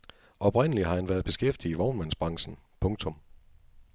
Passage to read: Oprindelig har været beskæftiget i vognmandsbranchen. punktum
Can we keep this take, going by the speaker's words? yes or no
no